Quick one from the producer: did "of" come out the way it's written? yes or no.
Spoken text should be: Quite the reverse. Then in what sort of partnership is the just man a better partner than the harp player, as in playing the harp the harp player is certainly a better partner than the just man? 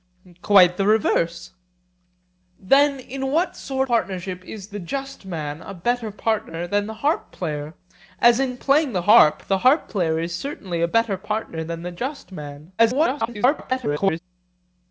no